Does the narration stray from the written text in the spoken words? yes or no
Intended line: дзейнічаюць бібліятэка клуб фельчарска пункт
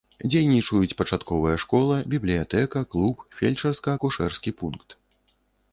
yes